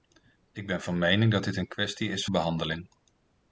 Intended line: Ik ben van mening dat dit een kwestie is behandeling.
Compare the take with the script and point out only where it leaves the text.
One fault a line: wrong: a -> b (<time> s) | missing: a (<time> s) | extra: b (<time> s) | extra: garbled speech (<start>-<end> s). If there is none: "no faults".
no faults